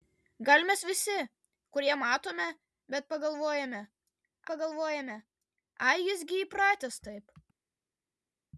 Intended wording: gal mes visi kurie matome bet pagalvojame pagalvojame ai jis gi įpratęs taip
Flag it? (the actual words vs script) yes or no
no